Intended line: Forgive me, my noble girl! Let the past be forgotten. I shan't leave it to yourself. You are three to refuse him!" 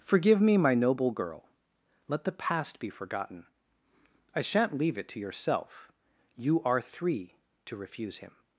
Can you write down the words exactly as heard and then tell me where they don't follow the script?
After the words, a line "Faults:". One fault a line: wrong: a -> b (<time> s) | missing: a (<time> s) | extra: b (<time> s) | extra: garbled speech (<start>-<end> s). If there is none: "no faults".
Forgive me, my noble girl! Let the past be forgotten. I shan't leave it to yourself. You are three to refuse him!"
Faults:
no faults